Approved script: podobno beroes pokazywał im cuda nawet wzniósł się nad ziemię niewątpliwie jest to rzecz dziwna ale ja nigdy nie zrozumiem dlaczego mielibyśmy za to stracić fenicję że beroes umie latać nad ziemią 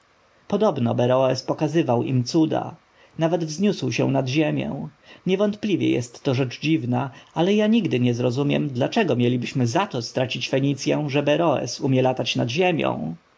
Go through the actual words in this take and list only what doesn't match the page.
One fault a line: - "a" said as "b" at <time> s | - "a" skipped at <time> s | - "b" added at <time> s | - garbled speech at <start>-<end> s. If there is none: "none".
none